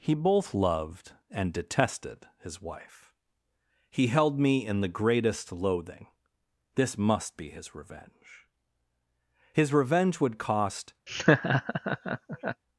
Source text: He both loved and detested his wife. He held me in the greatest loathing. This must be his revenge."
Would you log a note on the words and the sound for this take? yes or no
yes